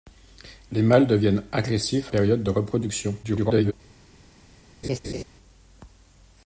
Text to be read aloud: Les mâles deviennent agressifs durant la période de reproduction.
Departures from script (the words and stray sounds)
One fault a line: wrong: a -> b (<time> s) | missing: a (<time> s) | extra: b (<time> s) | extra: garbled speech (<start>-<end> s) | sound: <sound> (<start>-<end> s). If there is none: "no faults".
missing: durant la (2.1 s)
extra: garbled speech (3.2-3.7 s)
sound: laugh (4.8-5.2 s)